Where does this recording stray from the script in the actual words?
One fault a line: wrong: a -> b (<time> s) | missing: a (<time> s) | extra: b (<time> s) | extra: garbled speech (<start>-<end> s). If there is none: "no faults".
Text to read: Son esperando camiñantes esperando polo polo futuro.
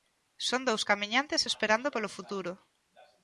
wrong: esperando -> dous (0.7 s)
missing: polo (2.1 s)